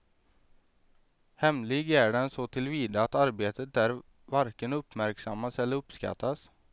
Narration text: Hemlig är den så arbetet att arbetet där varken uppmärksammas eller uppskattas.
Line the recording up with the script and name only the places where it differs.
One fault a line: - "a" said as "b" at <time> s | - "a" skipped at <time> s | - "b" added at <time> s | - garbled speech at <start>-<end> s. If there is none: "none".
- "arbetet" said as "tillvida" at 2.5 s